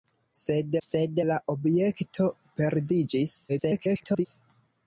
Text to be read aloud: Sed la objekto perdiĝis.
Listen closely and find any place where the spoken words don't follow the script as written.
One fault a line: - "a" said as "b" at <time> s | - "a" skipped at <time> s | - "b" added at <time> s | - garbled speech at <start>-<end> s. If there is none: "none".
- "sed" added at 0.8 s
- garbled speech at 3.5-4.3 s